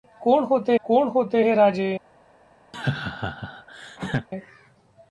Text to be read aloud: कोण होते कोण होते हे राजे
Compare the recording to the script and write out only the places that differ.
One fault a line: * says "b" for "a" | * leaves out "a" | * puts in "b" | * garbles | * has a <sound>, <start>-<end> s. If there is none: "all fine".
* has a laugh, 2.7-4.3 s